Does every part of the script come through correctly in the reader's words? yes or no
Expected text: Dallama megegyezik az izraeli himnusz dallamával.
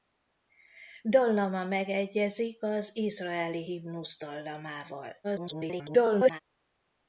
no